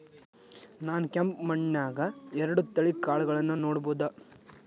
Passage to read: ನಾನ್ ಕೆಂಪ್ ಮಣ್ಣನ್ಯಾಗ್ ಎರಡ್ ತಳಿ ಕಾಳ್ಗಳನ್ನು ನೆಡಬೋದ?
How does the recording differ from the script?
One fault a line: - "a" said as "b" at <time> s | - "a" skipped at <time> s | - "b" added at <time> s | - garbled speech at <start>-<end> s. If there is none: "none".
none